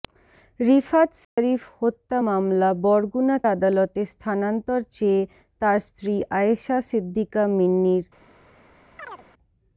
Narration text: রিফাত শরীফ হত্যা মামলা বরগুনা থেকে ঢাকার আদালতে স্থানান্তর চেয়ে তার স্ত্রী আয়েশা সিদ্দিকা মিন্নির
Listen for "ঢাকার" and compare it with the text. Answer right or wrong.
wrong